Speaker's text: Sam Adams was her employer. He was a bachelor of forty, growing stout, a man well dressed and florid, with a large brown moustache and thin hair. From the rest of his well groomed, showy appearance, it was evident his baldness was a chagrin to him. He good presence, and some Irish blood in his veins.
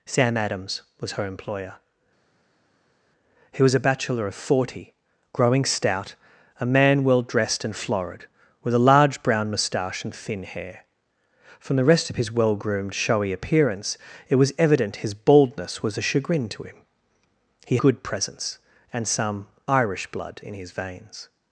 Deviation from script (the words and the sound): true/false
false